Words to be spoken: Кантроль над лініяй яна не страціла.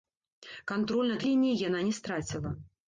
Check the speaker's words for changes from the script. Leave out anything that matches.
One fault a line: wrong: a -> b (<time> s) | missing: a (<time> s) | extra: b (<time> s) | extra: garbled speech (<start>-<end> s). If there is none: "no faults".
no faults